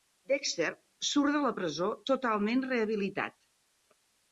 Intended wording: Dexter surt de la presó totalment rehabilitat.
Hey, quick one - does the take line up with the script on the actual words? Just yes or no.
yes